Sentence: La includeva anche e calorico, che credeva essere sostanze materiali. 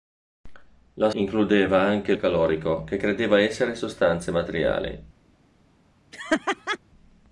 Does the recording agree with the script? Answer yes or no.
yes